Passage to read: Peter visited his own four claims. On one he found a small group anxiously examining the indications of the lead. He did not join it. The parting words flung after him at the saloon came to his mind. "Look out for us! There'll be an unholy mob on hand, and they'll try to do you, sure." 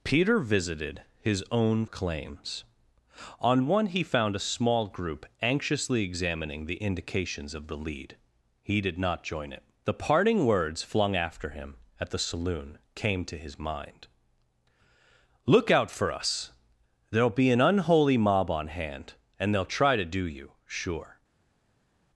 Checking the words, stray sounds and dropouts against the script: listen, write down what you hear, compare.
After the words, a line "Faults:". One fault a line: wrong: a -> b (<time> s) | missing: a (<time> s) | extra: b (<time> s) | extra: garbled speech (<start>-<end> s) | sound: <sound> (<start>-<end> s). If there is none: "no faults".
Peter visited his own claims. On one he found a small group anxiously examining the indications of the lead. He did not join it. The parting words flung after him at the saloon came to his mind. "Look out for us! There'll be an unholy mob on hand, and they'll try to do you, sure."
Faults:
missing: four (1.9 s)